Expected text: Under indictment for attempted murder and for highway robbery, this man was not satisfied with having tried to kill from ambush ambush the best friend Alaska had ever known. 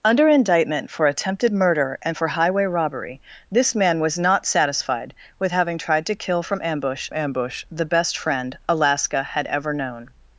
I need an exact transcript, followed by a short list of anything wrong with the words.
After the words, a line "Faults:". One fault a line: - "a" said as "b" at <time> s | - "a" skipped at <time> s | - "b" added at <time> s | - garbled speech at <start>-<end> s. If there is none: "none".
Under indictment for attempted murder and for highway robbery, this man was not satisfied with having tried to kill from ambush ambush the best friend Alaska had ever known.
Faults:
none